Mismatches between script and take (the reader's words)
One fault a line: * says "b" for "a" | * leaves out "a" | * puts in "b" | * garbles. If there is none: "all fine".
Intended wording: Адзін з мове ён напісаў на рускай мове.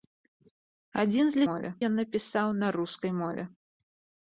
all fine